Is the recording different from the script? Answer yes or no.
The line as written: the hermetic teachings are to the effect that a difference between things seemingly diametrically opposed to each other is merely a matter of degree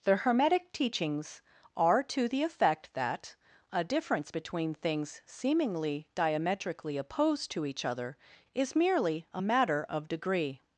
no